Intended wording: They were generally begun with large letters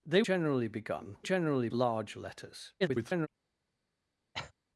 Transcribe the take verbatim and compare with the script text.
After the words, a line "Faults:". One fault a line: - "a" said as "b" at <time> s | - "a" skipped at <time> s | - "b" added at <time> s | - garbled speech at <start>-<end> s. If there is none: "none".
They generally begun generally large letters [garbled]
Faults:
- "were" skipped at 0.2 s
- "with" said as "generally" at 1.2 s
- garbled speech at 2.8-3.3 s